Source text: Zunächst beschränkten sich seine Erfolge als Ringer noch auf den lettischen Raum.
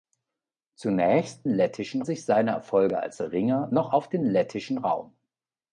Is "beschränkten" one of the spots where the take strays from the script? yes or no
yes